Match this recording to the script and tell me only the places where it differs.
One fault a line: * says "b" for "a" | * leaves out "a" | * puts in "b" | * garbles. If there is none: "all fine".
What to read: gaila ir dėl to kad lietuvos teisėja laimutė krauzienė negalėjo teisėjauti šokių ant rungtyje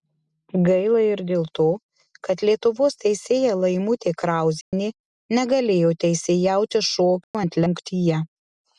all fine